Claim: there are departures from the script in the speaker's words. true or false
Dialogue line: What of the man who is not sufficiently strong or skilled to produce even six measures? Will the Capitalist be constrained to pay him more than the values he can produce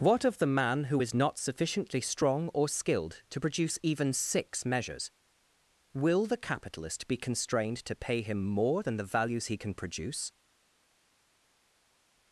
false